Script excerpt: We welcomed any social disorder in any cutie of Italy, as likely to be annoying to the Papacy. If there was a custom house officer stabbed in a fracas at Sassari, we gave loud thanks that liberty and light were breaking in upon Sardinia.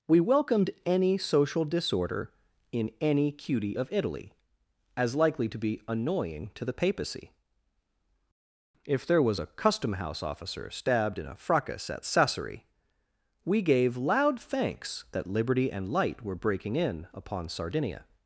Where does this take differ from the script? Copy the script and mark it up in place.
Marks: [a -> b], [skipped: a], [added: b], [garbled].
We welcomed any social disorder in any cutie of Italy, as likely to be annoying to the Papacy. If there was a custom house officer stabbed in a fracas at Sassari, we gave loud thanks that liberty and light were breaking in upon Sardinia.